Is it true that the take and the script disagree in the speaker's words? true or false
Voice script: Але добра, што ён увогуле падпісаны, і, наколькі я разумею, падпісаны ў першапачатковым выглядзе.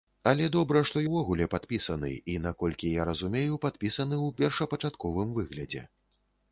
true